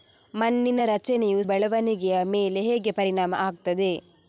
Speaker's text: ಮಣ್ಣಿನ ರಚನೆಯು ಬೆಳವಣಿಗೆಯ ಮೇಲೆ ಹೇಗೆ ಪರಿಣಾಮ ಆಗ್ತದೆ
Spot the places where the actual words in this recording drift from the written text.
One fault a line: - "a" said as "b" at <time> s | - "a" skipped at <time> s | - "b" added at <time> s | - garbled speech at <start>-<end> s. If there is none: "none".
none